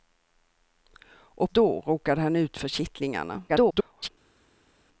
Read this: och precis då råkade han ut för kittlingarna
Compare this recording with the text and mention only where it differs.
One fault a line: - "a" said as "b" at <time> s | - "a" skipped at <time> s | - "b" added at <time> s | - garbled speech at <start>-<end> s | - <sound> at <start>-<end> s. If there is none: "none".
- "precis" skipped at 1.5 s
- garbled speech at 3.5-4.1 s